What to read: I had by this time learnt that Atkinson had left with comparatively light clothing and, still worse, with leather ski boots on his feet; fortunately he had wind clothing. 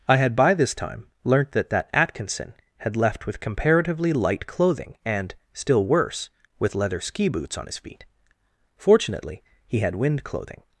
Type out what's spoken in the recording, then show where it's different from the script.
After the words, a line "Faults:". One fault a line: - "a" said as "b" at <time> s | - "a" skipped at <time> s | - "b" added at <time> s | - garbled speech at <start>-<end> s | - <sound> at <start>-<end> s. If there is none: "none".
I had by this time learnt that that Atkinson had left with comparatively light clothing and, still worse, with leather ski boots on his feet; fortunately he had wind clothing.
Faults:
- "that" added at 1.7 s